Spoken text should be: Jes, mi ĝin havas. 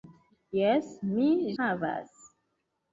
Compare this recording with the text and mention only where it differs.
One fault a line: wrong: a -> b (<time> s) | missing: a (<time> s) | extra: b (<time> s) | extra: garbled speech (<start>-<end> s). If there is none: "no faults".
missing: ĝin (1.3 s)